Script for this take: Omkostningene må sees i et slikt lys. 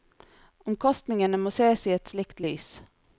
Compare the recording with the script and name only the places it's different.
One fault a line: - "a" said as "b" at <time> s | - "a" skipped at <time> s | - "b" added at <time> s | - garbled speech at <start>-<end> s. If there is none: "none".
none